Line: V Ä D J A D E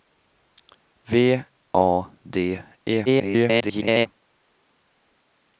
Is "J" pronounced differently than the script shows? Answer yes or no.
yes